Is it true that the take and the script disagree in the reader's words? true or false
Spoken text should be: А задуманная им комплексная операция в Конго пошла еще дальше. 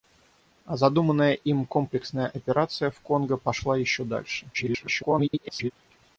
true